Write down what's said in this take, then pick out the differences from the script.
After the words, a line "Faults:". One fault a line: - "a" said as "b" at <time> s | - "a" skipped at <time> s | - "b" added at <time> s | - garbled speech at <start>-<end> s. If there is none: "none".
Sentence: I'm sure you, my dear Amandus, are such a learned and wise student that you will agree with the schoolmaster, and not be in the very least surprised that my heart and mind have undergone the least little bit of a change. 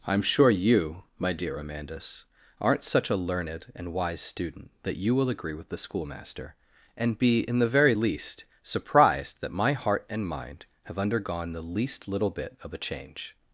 I'm sure you, my dear Amandus, aren't such a learned and wise student that you will agree with the schoolmaster, and be in the very least surprised that my heart and mind have undergone the least little bit of a change.
Faults:
- "are" said as "aren't" at 2.6 s
- "not" skipped at 7.2 s